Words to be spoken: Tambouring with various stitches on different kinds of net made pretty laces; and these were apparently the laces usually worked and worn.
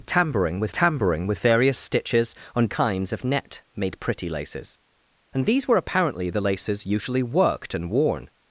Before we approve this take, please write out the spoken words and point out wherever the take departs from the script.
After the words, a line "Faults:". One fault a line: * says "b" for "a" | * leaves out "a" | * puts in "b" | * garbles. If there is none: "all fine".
Tambouring with tambouring with various stitches on kinds of net made pretty laces; and these were apparently the laces usually worked and worn.
Faults:
* puts in "tambouring with"
* leaves out "different"